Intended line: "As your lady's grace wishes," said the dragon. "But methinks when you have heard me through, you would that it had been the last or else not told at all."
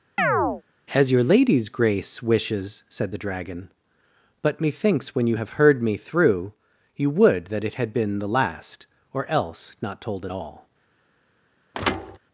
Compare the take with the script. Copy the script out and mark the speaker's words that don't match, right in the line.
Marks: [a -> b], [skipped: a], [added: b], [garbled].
"As your lady's grace wishes," said the dragon. "But methinks when you have heard me through, you would that it had been the last or else not told at all."